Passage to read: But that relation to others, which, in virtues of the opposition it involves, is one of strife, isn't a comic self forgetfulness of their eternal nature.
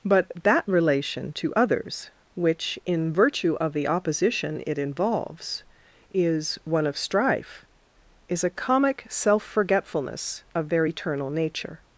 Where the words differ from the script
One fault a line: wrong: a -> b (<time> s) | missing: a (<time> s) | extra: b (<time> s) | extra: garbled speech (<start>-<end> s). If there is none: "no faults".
wrong: virtues -> virtue (3.1 s)
wrong: isn't -> is (8.3 s)